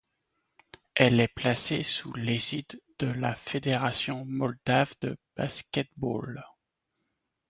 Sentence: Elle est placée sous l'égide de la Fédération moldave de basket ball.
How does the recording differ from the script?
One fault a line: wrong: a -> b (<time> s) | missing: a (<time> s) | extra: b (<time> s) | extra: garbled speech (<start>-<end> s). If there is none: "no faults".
no faults